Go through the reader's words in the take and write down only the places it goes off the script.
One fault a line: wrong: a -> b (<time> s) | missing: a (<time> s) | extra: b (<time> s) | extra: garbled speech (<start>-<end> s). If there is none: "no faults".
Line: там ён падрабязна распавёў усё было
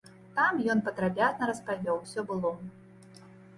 no faults